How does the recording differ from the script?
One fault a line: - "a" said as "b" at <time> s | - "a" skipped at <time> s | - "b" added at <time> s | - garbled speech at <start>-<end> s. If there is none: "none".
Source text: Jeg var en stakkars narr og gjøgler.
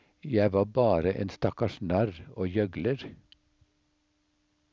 - "bare" added at 0.7 s